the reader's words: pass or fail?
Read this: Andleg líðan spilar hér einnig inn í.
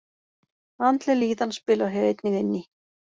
pass